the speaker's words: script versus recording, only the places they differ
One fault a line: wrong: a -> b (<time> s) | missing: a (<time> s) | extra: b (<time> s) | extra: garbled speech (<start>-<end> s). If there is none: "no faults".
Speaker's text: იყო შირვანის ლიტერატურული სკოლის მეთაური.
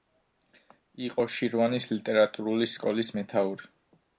no faults